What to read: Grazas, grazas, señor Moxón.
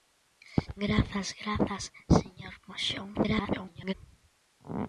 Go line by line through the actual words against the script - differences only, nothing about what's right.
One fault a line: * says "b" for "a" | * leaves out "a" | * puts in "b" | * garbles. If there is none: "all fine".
* garbles